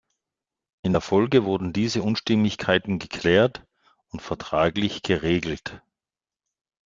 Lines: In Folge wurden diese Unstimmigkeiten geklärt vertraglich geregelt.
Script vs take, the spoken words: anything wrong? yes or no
yes